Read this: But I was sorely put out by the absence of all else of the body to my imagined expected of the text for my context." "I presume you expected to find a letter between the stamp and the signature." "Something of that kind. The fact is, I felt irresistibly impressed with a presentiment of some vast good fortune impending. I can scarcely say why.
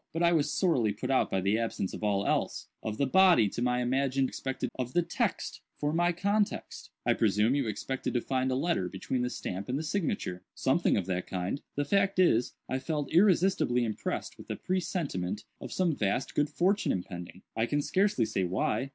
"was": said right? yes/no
yes